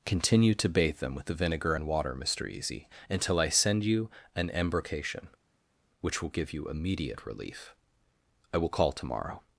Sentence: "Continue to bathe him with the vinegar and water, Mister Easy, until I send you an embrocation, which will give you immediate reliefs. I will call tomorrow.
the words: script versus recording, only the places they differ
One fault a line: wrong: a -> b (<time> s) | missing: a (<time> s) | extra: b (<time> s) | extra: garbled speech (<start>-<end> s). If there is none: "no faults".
wrong: him -> them (1.0 s)
wrong: reliefs -> relief (7.3 s)